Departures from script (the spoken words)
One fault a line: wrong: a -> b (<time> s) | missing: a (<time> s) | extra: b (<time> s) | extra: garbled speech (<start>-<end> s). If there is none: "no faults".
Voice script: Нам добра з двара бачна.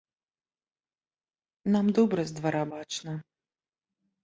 no faults